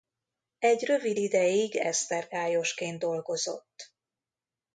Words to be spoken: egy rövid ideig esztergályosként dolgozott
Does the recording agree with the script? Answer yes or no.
yes